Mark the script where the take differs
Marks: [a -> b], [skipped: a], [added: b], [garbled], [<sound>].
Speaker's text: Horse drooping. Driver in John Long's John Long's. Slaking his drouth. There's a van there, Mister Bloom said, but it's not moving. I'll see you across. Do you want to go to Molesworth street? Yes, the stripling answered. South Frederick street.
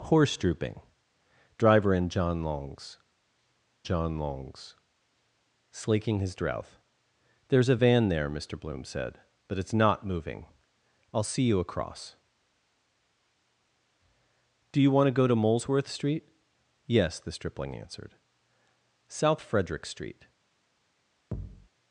Horse drooping. Driver in John Long's John Long's. Slaking his drouth. There's a van there, Mister Bloom said, but it's not moving. I'll see you across. Do you want to go to Molesworth street? Yes, the stripling answered. South Frederick street. [thud]